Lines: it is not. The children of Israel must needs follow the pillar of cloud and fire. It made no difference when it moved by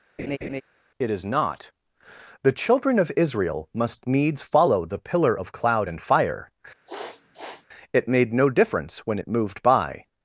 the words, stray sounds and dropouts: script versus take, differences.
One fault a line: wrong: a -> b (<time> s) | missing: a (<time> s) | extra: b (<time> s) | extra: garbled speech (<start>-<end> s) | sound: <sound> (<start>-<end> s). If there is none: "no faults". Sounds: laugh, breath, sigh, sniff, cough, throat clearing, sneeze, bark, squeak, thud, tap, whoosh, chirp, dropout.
sound: laugh (0.2-0.6 s)
sound: sniff (6.9-7.7 s)